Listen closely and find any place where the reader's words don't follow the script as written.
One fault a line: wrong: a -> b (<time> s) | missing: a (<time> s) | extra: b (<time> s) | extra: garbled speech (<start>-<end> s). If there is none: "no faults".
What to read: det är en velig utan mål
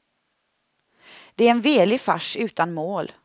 extra: fars (2.0 s)